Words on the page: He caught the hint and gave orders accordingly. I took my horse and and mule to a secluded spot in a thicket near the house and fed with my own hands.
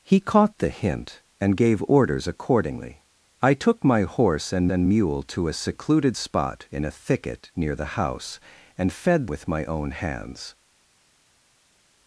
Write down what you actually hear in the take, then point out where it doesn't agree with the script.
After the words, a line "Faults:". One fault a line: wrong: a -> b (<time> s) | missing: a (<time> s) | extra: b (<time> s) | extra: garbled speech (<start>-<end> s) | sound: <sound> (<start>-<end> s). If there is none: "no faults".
He caught the hint and gave orders accordingly. I took my horse and and mule to a secluded spot in a thicket near the house and fed with my own hands.
Faults:
no faults